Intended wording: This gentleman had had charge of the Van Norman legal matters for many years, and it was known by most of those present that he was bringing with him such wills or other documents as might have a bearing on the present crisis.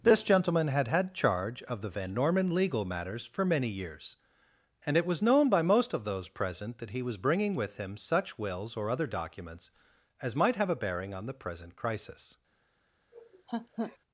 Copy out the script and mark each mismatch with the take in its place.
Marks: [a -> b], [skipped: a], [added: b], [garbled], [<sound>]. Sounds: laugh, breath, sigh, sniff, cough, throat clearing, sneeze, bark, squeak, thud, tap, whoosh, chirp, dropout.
This gentleman had had charge of the Van Norman legal matters for many years, and it was known by most of those present that he was bringing with him such wills or other documents as might have a bearing on the present crisis. [laugh]